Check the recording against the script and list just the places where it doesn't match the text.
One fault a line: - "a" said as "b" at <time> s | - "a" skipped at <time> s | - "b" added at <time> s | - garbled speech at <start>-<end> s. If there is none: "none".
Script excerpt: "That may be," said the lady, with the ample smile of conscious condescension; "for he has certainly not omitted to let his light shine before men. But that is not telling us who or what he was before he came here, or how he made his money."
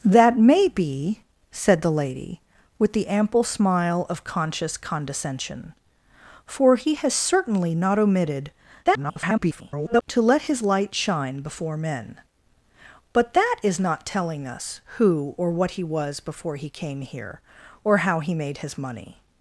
- garbled speech at 8.8-10.0 s